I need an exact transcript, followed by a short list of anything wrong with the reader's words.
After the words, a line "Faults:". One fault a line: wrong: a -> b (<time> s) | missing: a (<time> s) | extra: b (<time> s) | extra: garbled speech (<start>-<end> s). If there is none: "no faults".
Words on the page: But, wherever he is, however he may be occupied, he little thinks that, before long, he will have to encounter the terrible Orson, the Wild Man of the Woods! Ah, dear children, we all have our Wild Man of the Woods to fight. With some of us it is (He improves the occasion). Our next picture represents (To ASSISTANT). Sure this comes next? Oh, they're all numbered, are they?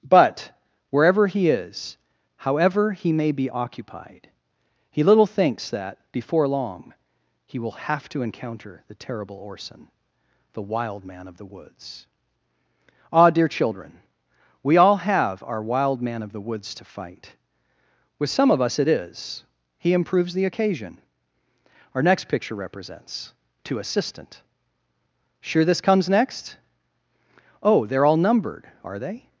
But, wherever he is, however he may be occupied, he little thinks that, before long, he will have to encounter the terrible Orson, the Wild Man of the Woods! Ah, dear children, we all have our Wild Man of the Woods to fight. With some of us it is (He improves the occasion). Our next picture represents (To ASSISTANT). Sure this comes next? Oh, they're all numbered, are they?
Faults:
no faults